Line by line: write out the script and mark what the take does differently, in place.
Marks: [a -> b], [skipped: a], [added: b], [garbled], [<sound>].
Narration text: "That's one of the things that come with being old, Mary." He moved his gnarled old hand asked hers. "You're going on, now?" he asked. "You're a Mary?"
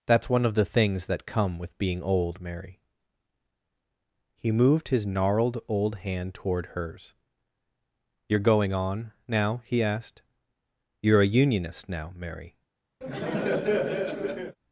"That's one of the things that come with being old, Mary." He moved his gnarled old hand [asked -> toward] hers. "You're going on, now?" he asked. "You're a [added: unionist now] Mary?" [laugh]